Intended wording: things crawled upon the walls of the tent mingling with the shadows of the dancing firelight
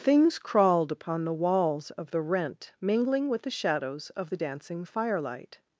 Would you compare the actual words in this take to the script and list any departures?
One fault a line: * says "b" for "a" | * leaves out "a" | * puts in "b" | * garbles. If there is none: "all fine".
* says "rent" for "tent"